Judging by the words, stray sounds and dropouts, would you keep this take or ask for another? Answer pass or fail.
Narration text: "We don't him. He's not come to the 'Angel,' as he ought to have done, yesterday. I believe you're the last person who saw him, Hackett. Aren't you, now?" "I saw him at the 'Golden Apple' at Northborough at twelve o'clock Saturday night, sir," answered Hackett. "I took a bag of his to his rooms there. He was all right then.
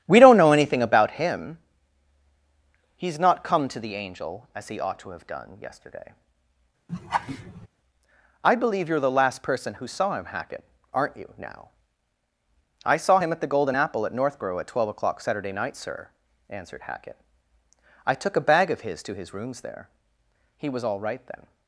fail